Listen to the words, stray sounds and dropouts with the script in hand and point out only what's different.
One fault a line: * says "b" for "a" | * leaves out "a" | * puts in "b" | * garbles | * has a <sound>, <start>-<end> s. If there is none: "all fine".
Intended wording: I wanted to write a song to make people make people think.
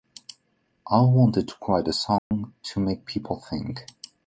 * has a dropout, 2.2-2.3 s
* leaves out "make people"